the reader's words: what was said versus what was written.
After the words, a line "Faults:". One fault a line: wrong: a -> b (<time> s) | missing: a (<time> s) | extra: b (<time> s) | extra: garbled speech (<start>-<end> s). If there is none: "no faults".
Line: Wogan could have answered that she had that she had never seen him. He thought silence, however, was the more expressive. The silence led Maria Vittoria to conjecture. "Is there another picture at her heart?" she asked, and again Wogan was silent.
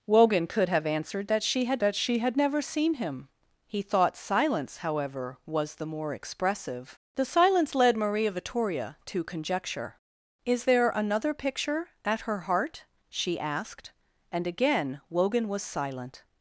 Wogan could have answered that she had that she had never seen him. He thought silence, however, was the more expressive. The silence led Maria Vittoria to conjecture. "Is there another picture at her heart?" she asked, and again Wogan was silent.
Faults:
no faults